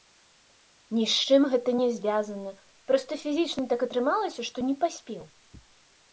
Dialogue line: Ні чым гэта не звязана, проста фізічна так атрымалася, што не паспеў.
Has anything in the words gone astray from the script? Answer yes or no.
yes